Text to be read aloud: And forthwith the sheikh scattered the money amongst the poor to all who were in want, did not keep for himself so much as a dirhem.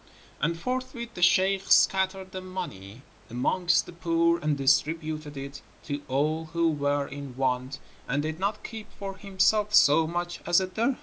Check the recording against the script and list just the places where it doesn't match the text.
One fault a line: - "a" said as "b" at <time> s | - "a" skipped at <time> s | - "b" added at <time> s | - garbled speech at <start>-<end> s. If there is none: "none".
- "and distributed it" added at 4.4 s
- "and" added at 8.1 s